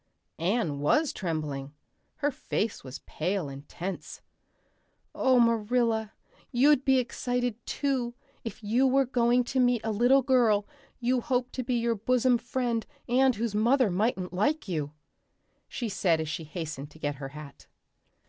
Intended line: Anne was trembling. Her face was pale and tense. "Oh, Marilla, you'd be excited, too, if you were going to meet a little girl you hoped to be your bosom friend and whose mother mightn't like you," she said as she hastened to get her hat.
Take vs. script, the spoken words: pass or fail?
pass